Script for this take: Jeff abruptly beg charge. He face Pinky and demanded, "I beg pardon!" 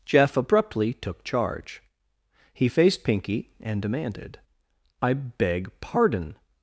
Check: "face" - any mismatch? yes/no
yes